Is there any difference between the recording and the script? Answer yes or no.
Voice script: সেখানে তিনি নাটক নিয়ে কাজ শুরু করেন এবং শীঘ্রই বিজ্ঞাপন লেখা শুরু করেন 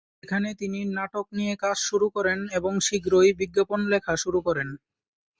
no